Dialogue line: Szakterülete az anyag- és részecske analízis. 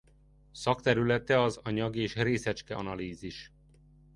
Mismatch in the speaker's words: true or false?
false